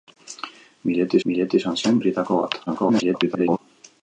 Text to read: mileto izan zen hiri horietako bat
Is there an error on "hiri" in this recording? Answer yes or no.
yes